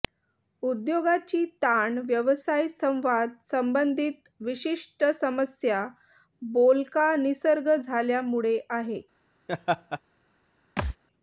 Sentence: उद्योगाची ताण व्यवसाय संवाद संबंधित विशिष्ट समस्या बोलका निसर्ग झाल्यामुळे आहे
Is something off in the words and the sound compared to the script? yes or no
yes